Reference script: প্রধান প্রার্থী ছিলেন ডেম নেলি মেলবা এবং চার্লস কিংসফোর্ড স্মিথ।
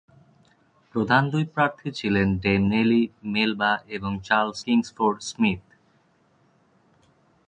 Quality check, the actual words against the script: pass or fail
fail